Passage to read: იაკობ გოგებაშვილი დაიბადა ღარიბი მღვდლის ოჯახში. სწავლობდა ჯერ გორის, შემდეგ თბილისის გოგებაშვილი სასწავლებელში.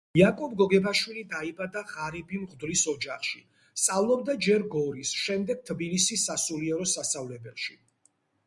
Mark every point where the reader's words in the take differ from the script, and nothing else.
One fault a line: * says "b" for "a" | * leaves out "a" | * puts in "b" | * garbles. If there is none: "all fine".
* says "სასულიერო" for "გოგებაშვილი"